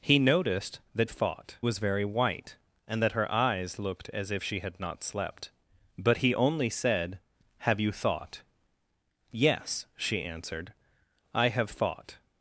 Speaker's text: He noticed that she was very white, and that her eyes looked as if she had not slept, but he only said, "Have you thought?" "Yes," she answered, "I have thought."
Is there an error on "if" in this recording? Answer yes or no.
no